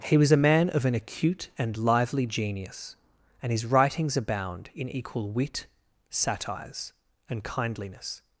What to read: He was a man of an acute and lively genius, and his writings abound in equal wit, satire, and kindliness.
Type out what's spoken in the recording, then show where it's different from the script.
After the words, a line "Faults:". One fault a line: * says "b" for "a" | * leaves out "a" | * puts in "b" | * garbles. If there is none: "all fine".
He was a man of an acute and lively genius, and his writings abound in equal wit, satires, and kindliness.
Faults:
* says "satires" for "satire"